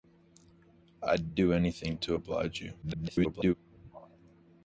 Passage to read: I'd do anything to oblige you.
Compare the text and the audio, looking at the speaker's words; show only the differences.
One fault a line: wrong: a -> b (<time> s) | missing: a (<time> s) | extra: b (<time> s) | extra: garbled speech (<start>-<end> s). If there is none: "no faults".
extra: garbled speech (2.8-3.5 s)